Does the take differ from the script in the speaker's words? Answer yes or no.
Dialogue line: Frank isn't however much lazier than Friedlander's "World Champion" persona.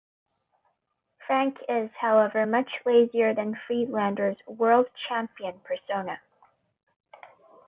yes